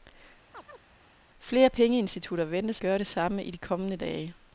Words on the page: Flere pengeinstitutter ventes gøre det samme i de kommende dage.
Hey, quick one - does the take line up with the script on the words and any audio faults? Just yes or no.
no